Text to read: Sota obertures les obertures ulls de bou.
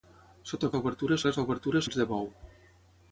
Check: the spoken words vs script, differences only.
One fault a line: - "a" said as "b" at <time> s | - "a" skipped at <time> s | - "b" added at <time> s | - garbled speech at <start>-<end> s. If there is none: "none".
none